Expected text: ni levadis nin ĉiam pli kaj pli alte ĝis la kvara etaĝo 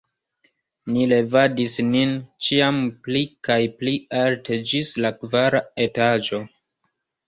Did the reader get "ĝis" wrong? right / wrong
right